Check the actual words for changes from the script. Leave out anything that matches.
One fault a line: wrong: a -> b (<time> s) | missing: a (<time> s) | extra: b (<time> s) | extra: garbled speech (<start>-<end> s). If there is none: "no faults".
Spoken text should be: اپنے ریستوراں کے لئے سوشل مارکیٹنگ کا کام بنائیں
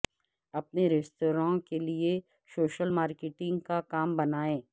no faults